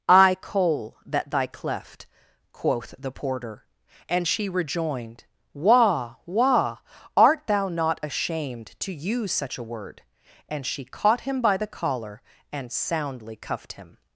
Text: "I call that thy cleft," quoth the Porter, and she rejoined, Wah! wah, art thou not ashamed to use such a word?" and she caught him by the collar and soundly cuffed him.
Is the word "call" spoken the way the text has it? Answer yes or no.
no